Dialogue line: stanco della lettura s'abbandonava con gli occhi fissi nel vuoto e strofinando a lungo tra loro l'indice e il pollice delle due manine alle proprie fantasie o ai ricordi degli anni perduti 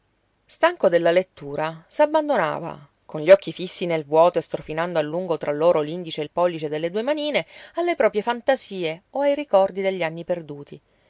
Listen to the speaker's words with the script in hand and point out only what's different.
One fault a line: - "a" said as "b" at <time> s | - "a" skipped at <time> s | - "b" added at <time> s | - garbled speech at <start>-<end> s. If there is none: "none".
none